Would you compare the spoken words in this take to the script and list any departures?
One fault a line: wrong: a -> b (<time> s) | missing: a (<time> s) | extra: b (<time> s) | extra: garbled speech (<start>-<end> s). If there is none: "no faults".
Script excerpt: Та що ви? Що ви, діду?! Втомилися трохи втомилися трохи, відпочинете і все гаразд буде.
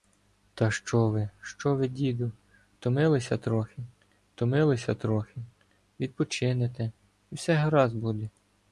no faults